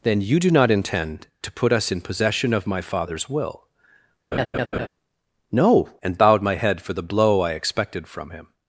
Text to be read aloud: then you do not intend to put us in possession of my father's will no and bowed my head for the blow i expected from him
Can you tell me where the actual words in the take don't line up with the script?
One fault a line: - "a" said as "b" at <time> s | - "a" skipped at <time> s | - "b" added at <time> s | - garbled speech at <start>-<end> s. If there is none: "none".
none